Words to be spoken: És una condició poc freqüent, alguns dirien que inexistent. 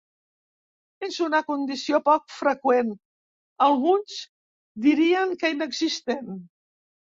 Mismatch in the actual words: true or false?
false